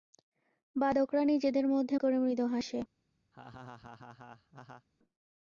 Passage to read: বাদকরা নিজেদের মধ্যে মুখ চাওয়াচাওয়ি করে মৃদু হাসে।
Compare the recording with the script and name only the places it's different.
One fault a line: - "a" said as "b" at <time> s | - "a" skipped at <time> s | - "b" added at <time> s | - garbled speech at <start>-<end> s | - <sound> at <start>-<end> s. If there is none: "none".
- "মুখ চাওয়াচাওয়ি" skipped at 1.9 s
- laugh at 3.3-4.9 s